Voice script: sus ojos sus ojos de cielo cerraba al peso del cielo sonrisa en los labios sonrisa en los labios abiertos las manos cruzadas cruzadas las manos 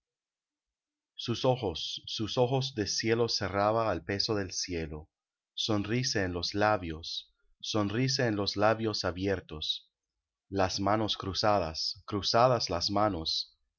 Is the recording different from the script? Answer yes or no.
no